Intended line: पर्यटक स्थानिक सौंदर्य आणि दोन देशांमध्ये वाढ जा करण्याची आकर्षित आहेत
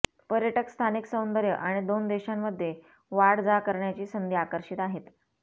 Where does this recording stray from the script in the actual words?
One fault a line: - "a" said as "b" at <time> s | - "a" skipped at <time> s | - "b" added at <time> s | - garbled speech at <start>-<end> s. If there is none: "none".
- "संधी" added at 4.1 s